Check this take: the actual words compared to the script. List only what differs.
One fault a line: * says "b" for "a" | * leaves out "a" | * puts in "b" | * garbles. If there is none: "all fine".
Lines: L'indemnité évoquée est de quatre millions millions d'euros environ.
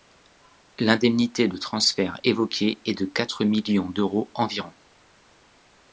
* puts in "de transfert"
* leaves out "millions"